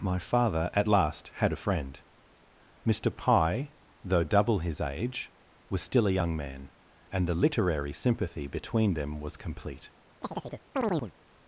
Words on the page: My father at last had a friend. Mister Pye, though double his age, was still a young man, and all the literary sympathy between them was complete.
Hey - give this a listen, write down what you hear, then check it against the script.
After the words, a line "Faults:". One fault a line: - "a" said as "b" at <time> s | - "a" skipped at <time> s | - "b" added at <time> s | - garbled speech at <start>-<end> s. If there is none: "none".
My father at last had a friend. Mister Pye, though double his age, was still a young man, and the literary sympathy between them was complete.
Faults:
- "all" skipped at 7.3 s